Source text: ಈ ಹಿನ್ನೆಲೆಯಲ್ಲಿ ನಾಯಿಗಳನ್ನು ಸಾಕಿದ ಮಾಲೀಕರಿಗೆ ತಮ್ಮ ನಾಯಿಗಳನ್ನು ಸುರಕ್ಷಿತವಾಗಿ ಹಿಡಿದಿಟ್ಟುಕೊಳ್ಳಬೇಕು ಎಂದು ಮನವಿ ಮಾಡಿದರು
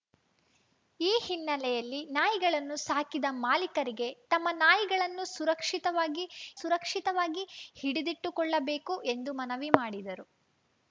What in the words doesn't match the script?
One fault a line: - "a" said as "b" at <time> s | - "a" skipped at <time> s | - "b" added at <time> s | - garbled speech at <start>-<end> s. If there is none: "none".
- "ಸುರಕ್ಷಿತವಾಗಿ" added at 6.6 s